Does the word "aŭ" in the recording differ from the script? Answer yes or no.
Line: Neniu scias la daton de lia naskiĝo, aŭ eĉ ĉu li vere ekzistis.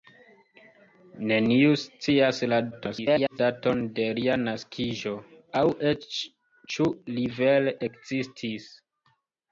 no